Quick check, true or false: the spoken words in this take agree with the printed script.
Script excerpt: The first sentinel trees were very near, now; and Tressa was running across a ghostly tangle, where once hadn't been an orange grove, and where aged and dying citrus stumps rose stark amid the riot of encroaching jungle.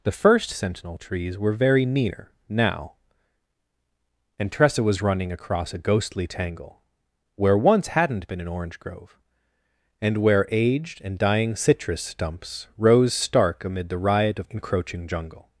true